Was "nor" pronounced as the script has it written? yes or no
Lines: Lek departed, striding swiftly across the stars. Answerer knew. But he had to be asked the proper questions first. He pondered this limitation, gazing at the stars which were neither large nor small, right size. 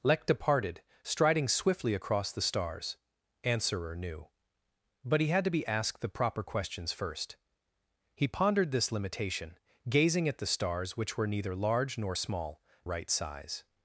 yes